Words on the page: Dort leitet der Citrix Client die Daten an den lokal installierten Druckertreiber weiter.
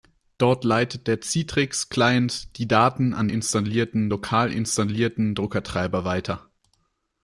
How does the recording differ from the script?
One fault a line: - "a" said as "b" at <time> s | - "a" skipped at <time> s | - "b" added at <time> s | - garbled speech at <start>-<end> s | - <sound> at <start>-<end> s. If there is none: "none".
- "den" said as "installierten" at 3.3 s